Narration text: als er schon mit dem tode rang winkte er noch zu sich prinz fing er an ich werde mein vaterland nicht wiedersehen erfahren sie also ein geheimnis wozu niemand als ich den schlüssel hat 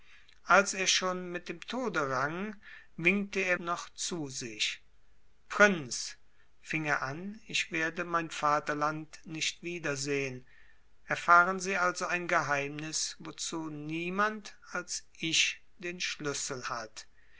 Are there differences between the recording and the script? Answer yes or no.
no